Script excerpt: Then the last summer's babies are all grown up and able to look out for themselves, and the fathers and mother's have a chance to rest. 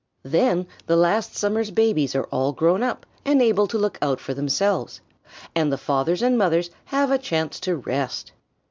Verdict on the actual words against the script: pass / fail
pass